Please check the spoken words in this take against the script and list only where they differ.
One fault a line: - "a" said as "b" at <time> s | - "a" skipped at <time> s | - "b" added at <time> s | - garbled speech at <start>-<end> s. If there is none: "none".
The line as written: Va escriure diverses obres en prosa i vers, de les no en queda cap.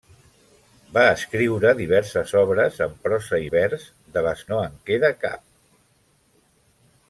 none